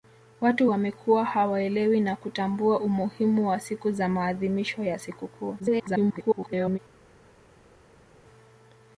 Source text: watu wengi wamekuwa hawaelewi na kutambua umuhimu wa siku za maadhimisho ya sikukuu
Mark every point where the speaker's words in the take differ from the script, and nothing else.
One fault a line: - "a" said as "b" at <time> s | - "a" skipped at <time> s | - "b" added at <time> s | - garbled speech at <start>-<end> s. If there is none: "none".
- "wengi" skipped at 0.7 s
- garbled speech at 5.6-6.8 s